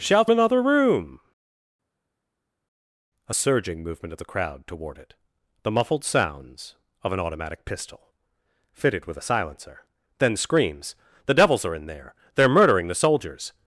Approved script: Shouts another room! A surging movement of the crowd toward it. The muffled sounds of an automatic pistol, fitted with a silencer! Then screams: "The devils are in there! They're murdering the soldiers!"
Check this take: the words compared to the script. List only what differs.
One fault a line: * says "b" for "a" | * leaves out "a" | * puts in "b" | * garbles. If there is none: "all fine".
all fine